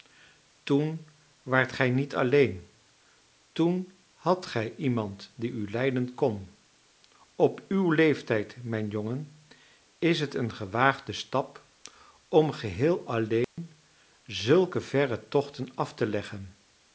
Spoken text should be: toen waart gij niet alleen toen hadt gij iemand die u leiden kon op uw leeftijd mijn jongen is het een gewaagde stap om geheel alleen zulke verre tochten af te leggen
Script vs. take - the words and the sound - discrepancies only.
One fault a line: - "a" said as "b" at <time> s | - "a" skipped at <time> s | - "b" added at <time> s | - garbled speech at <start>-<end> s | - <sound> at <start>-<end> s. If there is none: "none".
- dropout at 13.4-13.6 s